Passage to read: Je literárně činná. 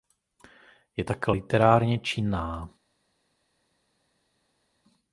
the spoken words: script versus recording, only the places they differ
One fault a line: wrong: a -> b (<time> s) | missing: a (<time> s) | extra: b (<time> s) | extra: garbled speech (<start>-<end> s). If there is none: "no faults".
extra: také (1.0 s)